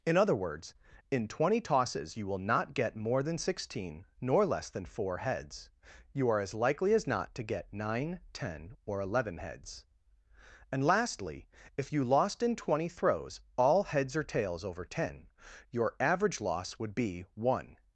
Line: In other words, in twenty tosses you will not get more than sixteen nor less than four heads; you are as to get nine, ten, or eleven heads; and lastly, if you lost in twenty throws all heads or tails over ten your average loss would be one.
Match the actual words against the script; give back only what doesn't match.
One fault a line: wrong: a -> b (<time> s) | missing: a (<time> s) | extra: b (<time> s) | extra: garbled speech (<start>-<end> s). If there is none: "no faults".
extra: likely as not (6.5 s)